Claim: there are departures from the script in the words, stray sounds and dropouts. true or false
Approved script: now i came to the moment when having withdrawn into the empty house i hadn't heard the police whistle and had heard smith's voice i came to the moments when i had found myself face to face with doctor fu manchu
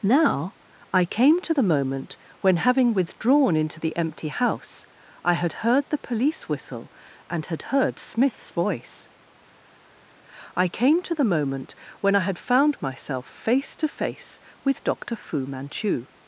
true